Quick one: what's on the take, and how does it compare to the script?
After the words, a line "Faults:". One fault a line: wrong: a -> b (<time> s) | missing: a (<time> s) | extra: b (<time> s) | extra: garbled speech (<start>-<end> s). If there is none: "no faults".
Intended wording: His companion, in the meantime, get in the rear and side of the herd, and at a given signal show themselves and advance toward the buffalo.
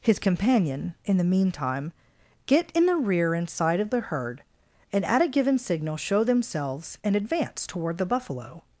His companion, in the meantime, get in the rear and side of the herd, and at a given signal show themselves and advance toward the buffalo.
Faults:
no faults